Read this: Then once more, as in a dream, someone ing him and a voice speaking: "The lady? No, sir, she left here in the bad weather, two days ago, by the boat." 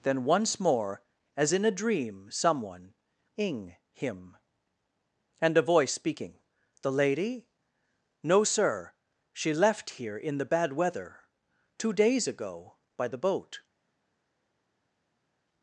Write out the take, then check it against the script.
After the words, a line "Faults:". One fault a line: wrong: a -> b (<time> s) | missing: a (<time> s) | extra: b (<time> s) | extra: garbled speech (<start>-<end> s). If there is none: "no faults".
Then once more, as in a dream, someone ing him and a voice speaking: "The lady? No, sir, she left here in the bad weather, two days ago, by the boat."
Faults:
no faults